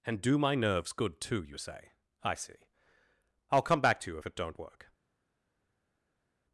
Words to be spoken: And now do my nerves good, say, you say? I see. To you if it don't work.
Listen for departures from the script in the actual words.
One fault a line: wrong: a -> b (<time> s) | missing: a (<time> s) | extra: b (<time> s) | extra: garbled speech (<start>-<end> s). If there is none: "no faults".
missing: now (0.2 s)
wrong: say -> too (1.2 s)
extra: I'll come back (3.5 s)